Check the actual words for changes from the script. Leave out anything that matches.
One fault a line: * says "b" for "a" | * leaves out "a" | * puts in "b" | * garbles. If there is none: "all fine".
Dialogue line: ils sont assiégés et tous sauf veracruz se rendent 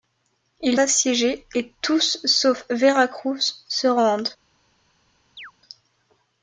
* leaves out "sont"